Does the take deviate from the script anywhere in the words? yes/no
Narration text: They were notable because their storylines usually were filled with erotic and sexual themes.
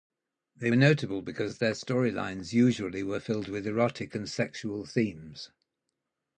yes